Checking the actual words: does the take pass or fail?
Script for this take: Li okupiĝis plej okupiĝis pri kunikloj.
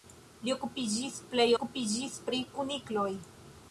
pass